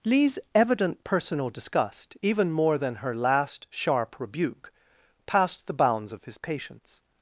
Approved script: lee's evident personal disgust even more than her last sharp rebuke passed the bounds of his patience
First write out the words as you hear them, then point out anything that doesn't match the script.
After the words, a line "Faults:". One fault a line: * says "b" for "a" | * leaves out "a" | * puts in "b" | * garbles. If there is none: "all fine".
lee's evident personal disgust even more than her last sharp rebuke passed the bounds of his patience
Faults:
all fine